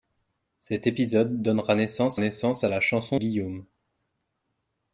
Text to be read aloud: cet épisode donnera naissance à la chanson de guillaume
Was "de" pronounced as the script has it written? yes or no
no